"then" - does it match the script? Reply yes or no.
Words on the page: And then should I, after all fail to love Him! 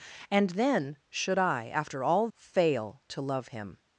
yes